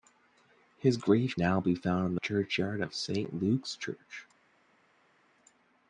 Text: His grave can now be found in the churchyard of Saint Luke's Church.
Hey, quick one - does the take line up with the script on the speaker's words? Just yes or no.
no